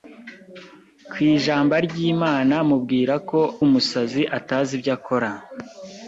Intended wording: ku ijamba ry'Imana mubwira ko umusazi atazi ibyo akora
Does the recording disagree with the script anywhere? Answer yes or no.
no